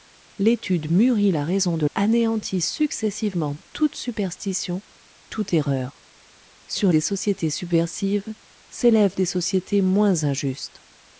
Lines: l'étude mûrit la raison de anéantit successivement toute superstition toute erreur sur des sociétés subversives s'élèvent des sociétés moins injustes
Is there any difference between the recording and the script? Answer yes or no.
no